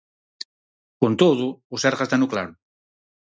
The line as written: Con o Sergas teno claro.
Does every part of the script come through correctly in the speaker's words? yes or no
no